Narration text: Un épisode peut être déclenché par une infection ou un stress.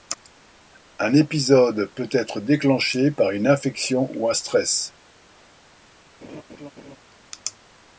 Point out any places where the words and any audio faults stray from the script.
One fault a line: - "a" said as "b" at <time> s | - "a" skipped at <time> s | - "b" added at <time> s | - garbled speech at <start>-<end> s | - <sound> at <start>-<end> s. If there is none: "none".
- laugh at 6.2-7.0 s